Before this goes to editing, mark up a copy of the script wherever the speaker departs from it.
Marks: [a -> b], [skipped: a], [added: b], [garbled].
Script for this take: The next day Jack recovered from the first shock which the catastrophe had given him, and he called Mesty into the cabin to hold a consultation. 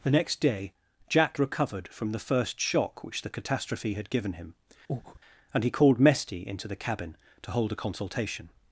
The next day Jack recovered from the first shock which the catastrophe had given him, and he called Mesty into the cabin to hold a consultation.